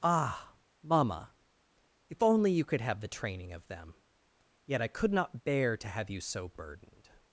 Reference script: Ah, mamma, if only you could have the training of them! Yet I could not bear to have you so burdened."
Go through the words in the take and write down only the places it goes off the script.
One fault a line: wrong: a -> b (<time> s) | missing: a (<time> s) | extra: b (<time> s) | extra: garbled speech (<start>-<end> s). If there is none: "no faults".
no faults